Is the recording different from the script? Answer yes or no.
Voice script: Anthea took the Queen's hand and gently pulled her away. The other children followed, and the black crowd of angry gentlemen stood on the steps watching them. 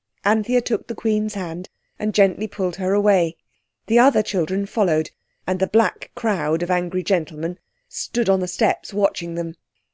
no